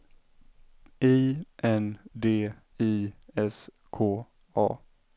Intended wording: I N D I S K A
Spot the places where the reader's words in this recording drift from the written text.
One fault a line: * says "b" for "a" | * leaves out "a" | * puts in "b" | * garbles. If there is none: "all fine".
all fine